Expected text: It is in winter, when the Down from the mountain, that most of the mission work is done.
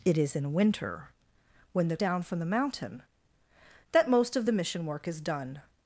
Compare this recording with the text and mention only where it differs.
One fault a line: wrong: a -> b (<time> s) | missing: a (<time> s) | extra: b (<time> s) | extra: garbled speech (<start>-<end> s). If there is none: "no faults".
no faults